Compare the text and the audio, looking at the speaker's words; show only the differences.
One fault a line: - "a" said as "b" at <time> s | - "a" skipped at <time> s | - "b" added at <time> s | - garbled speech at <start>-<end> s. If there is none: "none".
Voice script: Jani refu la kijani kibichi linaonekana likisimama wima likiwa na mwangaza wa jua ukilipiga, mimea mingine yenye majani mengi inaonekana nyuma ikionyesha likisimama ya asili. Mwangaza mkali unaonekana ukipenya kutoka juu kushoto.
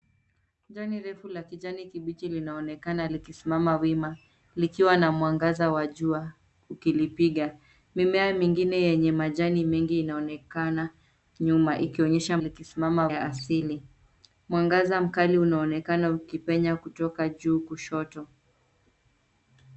none